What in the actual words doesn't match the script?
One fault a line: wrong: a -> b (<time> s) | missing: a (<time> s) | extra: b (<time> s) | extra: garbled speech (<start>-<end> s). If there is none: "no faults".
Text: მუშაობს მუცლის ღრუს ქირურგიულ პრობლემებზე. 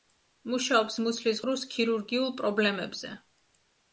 no faults